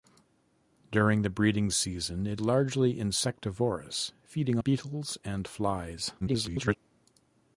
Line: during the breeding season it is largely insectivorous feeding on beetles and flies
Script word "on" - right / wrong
wrong